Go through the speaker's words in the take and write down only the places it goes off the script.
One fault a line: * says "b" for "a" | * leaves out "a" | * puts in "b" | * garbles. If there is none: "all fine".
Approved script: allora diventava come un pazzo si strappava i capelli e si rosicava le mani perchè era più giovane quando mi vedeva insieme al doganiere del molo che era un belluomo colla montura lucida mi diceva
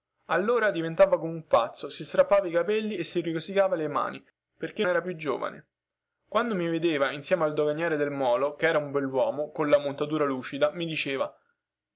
all fine